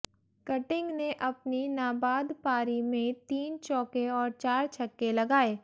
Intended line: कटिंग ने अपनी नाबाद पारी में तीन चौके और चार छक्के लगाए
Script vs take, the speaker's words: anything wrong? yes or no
no